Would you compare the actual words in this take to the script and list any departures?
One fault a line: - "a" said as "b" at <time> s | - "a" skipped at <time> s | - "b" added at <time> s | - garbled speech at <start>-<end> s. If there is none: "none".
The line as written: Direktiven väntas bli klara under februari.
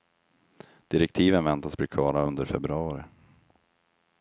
none